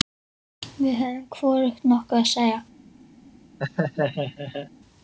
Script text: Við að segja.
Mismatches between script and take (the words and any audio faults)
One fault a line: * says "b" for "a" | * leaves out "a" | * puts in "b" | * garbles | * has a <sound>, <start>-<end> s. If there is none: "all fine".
* puts in "höfðum hvorugt nokkuð"
* has a laugh, 3.6-4.7 s